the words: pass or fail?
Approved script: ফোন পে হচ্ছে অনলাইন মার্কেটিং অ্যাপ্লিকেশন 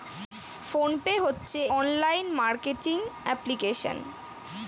pass